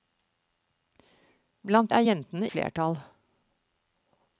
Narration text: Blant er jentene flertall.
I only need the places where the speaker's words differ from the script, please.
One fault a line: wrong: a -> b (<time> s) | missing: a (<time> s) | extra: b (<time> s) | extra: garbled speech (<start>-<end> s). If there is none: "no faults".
no faults